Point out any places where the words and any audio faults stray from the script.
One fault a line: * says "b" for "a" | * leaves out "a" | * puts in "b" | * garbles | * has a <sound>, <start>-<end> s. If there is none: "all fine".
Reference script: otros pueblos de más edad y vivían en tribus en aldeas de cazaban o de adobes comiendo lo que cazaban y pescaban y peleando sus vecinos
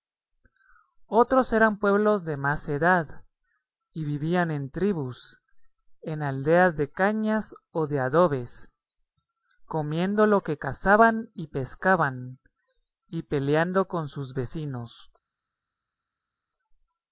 * puts in "eran"
* says "cañas" for "cazaban"
* puts in "con"